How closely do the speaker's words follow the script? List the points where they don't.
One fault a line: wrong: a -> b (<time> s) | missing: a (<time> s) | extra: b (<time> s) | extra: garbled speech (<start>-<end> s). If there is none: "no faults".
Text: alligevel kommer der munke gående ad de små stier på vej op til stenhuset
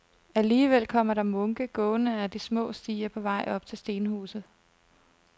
no faults